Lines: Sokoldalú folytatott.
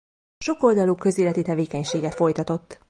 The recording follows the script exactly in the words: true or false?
false